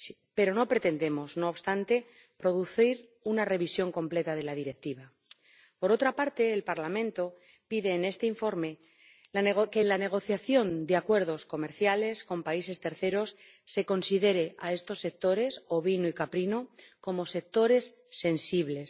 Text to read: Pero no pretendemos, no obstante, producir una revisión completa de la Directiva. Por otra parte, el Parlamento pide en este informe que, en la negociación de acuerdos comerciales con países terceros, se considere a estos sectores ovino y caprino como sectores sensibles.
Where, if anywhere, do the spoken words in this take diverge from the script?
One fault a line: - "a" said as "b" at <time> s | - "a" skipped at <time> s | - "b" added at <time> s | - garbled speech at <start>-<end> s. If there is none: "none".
none